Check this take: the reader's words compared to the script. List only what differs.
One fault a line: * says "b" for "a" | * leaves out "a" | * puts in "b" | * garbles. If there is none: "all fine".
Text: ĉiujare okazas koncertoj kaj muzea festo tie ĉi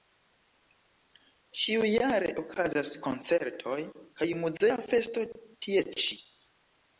all fine